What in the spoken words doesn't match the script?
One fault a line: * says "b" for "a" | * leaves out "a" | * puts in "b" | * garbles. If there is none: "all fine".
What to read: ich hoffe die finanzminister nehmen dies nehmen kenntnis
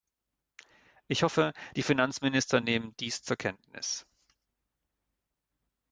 * says "zur" for "nehmen"